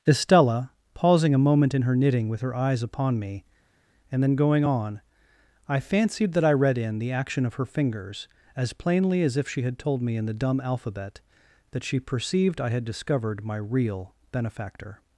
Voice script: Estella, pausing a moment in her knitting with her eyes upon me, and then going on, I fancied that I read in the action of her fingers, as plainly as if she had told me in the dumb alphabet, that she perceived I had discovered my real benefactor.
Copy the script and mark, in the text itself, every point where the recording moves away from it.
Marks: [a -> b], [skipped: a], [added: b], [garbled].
Estella, pausing a moment in her knitting with her eyes upon me, and then going on, I fancied that I read in the action of her fingers, as plainly as if she had told me in the dumb alphabet, that she perceived I had discovered my real benefactor.